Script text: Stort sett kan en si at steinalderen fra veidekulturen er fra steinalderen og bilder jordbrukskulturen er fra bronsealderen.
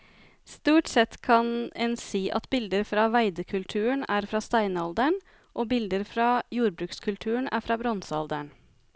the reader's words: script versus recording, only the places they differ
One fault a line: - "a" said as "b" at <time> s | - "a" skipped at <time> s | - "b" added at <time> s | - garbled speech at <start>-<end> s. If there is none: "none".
- "steinalderen" said as "bilder" at 2.5 s
- "fra" added at 6.1 s